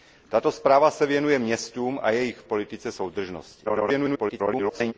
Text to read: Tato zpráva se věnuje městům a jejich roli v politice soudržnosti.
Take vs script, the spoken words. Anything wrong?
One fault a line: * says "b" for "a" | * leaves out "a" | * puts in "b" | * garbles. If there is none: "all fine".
* leaves out "roli"
* garbles